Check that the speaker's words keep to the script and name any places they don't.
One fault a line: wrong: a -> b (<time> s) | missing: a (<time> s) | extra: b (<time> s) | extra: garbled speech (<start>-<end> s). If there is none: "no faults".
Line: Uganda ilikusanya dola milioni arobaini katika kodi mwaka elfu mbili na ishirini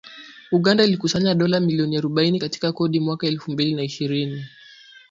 no faults